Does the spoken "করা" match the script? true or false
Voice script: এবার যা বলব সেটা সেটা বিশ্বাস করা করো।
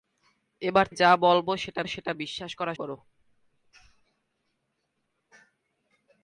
true